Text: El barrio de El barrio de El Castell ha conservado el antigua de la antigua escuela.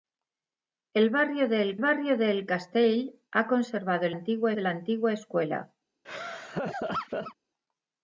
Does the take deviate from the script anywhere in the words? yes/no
no